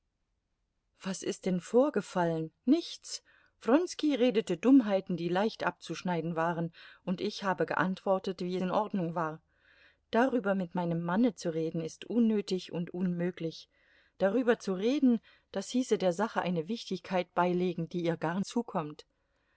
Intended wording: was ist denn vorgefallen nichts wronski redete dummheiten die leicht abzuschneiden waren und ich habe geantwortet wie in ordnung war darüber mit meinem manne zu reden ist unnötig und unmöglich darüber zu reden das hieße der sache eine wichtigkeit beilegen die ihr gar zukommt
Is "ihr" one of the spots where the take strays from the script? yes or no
no